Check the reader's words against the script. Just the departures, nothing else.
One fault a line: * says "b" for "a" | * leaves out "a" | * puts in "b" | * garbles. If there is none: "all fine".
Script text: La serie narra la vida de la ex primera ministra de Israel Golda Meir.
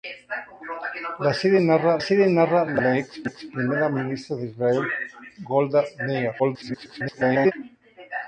* puts in "serie narra"
* leaves out "la"
* garbles